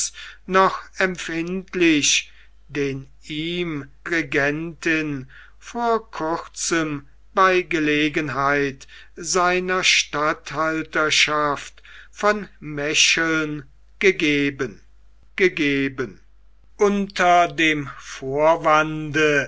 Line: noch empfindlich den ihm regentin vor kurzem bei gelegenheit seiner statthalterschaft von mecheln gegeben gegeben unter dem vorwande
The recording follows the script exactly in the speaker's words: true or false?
true